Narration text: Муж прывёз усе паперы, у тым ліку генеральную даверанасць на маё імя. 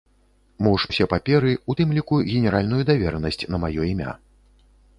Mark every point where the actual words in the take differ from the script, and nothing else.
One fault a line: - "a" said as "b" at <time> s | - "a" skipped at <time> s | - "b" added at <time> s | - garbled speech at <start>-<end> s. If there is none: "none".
- "прывёз" skipped at 0.8 s